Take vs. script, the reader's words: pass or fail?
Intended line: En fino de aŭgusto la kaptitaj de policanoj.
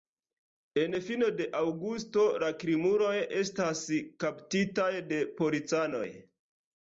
fail